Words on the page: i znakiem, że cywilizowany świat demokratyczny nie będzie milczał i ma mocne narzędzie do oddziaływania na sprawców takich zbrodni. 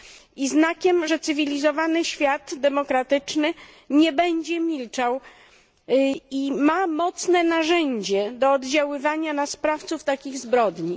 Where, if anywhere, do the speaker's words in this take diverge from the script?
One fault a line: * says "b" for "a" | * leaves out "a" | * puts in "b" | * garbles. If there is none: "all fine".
all fine